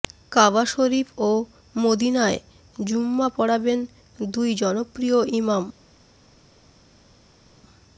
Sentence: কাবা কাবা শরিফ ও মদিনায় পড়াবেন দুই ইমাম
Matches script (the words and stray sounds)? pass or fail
fail